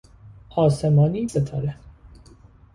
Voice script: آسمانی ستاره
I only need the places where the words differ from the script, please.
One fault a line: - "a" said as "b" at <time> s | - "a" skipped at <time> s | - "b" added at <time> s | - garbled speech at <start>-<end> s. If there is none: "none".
none